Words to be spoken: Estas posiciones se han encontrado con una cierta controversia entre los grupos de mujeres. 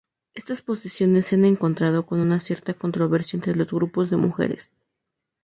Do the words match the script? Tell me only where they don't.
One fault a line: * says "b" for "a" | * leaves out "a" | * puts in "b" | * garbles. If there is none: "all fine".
all fine